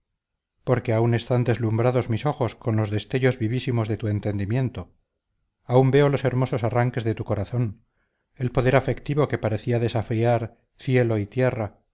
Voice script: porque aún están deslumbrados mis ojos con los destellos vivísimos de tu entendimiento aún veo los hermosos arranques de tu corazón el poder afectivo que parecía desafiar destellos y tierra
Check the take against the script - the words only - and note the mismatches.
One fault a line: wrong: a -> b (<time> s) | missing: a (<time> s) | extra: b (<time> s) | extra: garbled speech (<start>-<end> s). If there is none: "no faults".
wrong: destellos -> cielo (10.8 s)